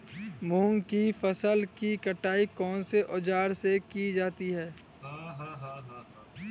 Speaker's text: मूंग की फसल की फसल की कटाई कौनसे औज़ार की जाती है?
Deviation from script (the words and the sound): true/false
true